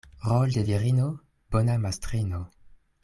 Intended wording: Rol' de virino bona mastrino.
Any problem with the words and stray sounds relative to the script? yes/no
no